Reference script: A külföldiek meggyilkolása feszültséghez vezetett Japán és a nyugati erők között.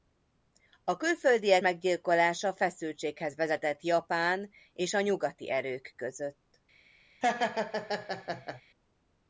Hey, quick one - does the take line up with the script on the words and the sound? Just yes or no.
no